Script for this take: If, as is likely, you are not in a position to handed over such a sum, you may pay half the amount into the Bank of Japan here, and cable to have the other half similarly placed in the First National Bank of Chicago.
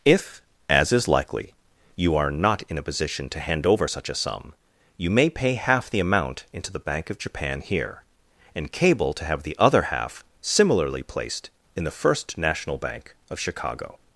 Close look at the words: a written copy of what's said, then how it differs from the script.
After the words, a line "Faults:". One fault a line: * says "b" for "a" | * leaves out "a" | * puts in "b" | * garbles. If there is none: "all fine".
If, as is likely, you are not in a position to hand over such a sum, you may pay half the amount into the Bank of Japan here, and cable to have the other half similarly placed in the First National Bank of Chicago.
Faults:
* says "hand" for "handed"